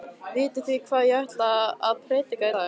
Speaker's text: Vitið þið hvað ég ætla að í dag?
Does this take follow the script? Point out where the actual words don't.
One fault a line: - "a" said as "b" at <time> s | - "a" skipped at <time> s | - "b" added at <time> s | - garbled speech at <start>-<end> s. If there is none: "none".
- "prédika" added at 2.1 s